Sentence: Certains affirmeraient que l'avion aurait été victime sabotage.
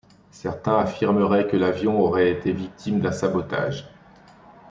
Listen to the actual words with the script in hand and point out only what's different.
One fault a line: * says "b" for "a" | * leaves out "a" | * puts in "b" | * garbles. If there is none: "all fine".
* puts in "d'un"